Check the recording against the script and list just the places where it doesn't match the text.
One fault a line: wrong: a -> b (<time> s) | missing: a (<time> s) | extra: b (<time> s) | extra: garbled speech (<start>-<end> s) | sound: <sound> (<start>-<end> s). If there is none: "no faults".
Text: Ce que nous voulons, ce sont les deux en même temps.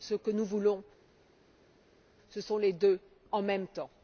no faults